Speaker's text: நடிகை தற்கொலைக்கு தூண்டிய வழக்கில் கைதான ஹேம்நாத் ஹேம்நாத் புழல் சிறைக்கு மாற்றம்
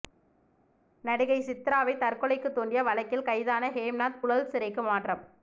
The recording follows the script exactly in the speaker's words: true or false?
false